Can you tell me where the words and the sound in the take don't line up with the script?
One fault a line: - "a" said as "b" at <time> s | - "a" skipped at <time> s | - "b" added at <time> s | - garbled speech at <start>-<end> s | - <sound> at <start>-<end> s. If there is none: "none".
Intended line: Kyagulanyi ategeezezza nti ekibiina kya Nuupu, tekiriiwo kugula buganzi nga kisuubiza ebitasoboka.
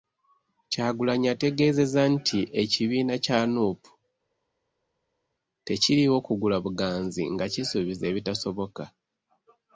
none